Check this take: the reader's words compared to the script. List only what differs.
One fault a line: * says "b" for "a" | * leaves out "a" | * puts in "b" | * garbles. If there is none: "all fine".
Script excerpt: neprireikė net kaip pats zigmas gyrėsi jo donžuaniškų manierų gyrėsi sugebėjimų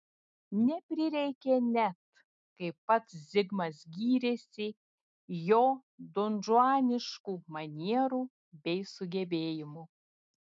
* says "bei" for "gyrėsi"